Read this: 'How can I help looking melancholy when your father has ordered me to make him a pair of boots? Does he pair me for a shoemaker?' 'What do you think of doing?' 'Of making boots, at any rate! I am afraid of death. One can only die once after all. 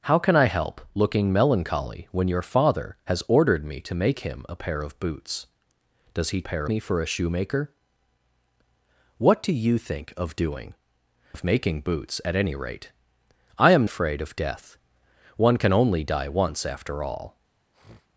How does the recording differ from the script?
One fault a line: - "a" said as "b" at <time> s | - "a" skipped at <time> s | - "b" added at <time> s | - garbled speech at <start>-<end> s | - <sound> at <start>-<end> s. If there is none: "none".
- sniff at 17.7-18.1 s